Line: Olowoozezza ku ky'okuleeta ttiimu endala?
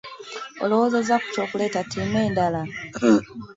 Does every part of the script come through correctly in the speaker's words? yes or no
yes